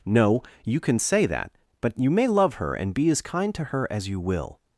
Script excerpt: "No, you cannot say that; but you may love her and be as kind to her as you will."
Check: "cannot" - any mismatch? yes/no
yes